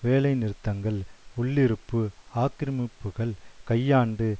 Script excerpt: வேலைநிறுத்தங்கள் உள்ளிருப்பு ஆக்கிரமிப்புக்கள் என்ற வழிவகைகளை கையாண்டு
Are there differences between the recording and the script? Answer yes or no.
yes